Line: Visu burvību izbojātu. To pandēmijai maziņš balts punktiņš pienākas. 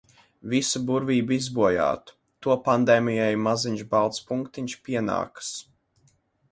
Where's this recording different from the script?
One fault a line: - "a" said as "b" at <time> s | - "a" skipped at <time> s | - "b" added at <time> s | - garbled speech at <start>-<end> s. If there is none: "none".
none